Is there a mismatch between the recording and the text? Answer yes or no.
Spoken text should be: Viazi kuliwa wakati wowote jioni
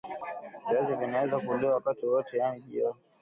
yes